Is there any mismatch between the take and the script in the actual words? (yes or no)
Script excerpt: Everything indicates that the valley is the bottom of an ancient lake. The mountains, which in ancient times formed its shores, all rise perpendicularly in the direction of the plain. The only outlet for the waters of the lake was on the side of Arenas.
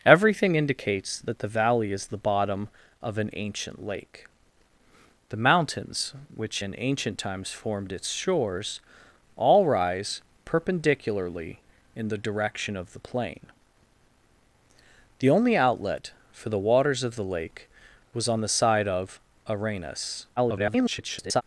yes